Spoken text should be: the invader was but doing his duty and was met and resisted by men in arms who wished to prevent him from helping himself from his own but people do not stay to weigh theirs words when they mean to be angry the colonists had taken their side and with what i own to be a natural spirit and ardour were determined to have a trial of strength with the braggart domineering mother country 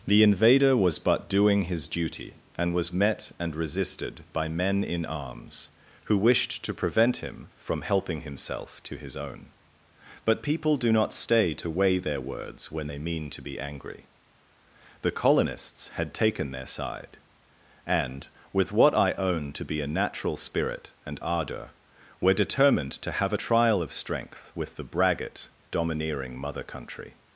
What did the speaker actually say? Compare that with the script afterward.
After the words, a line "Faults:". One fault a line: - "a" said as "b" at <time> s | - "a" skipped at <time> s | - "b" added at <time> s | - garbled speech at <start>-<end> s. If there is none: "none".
the invader was but doing his duty and was met and resisted by men in arms who wished to prevent him from helping himself to his own but people do not stay to weigh their words when they mean to be angry the colonists had taken their side and with what i own to be a natural spirit and ardour were determined to have a trial of strength with the braggart domineering mother country
Faults:
- "from" said as "to" at 8.8 s
- "theirs" said as "their" at 12.0 s